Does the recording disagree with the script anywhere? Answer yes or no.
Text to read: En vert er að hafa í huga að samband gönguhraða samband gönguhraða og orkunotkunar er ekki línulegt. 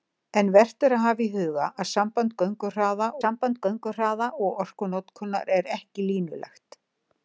no